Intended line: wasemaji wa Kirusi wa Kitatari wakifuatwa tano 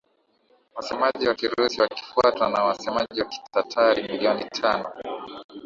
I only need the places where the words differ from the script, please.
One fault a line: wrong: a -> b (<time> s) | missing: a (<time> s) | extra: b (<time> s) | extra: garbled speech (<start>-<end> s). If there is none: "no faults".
extra: wakifuatwa na wasemaji (1.8 s)
wrong: wakifuatwa -> milioni (4.1 s)